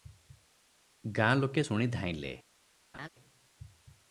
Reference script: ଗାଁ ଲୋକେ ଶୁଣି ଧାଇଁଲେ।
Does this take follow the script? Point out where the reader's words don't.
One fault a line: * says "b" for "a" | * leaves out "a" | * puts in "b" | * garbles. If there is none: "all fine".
all fine